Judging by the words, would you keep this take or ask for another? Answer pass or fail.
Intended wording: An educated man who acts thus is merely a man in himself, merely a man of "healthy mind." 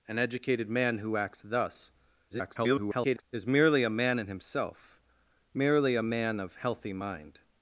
fail